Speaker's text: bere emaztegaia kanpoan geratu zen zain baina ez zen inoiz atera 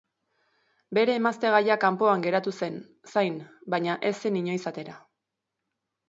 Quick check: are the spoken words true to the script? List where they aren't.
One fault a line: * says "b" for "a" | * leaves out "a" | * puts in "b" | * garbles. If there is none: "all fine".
all fine